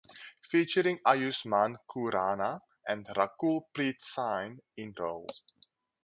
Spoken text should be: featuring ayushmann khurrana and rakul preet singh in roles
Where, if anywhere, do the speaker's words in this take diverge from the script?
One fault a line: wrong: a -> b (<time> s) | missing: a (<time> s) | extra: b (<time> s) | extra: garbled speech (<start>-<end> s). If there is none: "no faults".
no faults